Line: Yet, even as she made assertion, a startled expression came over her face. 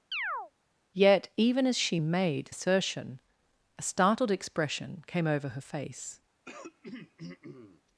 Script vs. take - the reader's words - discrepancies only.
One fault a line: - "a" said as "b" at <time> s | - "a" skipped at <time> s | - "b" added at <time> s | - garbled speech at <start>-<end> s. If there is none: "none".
none